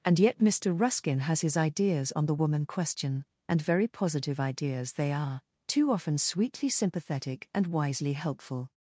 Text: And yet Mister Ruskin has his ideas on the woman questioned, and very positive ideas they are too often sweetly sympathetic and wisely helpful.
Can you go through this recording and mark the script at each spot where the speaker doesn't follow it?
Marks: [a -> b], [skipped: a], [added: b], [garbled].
And yet Mister Ruskin has his ideas on the woman [questioned, -> question] and very positive ideas they are too often sweetly sympathetic and wisely helpful.